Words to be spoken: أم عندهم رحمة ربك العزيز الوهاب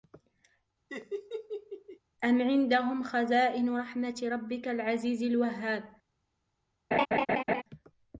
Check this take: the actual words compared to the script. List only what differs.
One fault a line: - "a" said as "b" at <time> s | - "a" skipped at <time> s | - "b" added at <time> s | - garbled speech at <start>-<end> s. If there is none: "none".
- "خزائن" added at 3.0 s